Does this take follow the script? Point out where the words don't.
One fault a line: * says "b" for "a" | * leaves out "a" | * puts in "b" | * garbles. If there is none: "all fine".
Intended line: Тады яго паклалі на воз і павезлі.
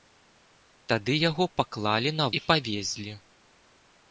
* leaves out "воз"